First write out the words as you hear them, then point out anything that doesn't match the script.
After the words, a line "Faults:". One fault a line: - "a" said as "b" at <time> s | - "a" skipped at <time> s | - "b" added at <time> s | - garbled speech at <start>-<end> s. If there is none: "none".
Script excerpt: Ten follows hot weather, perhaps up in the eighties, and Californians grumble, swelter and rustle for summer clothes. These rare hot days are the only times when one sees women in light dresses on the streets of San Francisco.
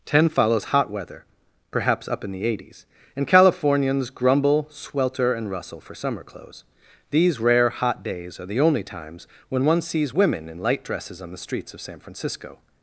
Ten follows hot weather, perhaps up in the eighties, and Californians grumble, swelter and rustle for summer clothes. These rare hot days are the only times when one sees women in light dresses on the streets of San Francisco.
Faults:
none